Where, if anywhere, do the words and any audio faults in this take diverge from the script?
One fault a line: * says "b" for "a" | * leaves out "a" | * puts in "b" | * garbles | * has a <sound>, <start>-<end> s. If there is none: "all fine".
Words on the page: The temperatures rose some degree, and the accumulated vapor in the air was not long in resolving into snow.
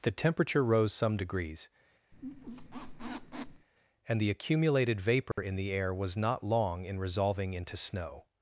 * says "temperature" for "temperatures"
* says "degrees" for "degree"
* has a squeak, 2.1-3.7 s
* has a dropout, 5.3-5.4 s